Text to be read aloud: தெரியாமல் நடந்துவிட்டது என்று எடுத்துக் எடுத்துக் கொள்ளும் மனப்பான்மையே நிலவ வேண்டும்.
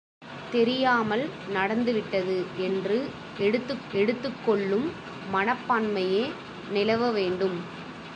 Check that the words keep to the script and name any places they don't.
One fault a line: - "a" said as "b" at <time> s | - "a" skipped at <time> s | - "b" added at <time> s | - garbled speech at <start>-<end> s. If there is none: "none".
none